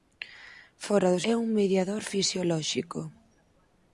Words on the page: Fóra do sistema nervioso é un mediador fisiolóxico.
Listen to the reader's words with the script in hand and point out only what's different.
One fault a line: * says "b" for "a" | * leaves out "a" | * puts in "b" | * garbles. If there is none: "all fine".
* leaves out "sistema nervioso"